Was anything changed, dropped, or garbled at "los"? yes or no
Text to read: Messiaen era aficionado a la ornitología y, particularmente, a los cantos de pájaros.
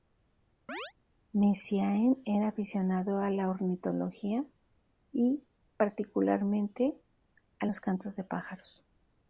no